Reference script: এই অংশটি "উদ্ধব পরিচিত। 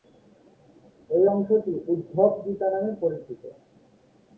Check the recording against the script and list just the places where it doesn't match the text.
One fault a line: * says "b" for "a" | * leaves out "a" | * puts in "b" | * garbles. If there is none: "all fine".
* puts in "গীতা নামে"